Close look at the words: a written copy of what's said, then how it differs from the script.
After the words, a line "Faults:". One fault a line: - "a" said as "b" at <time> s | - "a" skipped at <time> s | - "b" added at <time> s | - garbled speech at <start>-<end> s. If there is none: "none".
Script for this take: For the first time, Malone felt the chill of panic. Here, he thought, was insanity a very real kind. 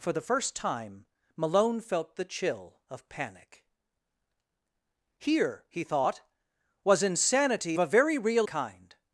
For the first time, Malone felt the chill of panic. Here, he thought, was insanity a very real kind.
Faults:
none